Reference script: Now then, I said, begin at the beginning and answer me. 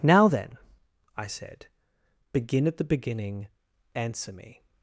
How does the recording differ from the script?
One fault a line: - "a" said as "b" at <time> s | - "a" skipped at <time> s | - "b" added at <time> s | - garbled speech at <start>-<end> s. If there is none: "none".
- "and" skipped at 3.5 s